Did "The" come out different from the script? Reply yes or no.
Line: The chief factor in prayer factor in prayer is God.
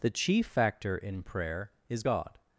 no